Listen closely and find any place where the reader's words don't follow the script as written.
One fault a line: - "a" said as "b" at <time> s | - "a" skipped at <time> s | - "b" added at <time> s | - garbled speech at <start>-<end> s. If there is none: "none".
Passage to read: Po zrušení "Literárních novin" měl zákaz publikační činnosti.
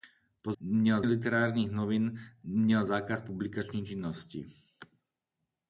- "zrušení" said as "měl" at 0.6 s